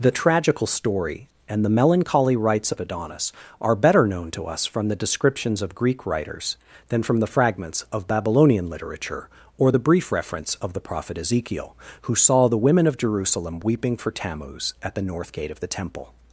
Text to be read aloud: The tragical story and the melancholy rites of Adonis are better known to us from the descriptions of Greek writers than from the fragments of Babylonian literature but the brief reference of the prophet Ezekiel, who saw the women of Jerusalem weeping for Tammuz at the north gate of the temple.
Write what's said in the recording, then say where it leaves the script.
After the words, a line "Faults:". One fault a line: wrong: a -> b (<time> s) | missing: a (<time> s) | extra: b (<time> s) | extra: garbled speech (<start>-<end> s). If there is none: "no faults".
The tragical story and the melancholy rites of Adonis are better known to us from the descriptions of Greek writers than from the fragments of Babylonian literature or the brief reference of the prophet Ezekiel, who saw the women of Jerusalem weeping for Tammuz at the north gate of the temple.
Faults:
wrong: but -> or (9.6 s)